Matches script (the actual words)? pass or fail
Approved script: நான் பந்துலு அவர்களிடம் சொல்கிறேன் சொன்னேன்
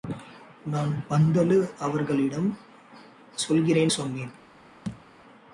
pass